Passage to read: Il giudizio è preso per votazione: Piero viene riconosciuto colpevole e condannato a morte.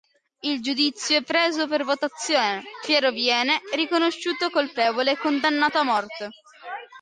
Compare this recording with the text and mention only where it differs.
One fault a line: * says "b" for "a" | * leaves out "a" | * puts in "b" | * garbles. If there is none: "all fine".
all fine